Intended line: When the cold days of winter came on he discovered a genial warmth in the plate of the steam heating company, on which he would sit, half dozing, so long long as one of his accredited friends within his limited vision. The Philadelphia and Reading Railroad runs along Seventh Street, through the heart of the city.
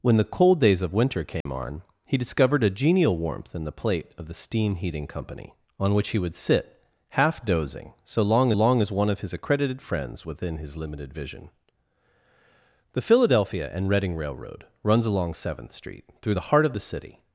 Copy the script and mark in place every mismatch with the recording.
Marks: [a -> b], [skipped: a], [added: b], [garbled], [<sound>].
When the cold days of winter came [dropout] on he discovered a genial warmth in the plate of the steam heating company, on which he would sit, half dozing, so long long as one of his accredited friends within his limited vision. The Philadelphia and Reading Railroad runs along Seventh Street, through the heart of the city.